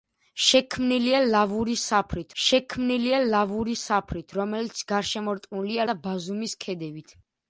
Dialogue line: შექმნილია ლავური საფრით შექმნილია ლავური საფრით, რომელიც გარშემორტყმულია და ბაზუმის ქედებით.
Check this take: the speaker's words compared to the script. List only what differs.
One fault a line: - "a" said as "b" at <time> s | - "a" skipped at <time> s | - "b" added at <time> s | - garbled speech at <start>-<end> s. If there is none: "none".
none